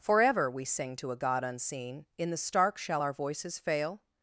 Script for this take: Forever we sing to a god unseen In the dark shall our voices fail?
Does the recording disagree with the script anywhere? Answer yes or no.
yes